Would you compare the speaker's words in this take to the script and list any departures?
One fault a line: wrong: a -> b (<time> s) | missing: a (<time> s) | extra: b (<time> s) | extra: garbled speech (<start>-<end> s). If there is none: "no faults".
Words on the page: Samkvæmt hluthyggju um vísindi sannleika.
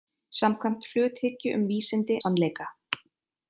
no faults